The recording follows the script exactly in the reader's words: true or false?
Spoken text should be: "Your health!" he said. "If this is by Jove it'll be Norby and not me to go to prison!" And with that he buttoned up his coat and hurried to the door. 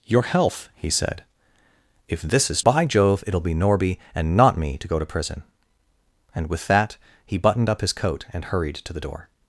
true